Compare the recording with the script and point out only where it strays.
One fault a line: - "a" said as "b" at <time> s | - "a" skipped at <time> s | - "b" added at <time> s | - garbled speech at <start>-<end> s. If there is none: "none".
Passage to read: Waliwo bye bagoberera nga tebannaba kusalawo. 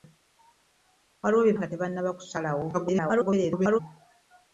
- "bagoberera" skipped at 1.6 s
- garbled speech at 2.7-3.8 s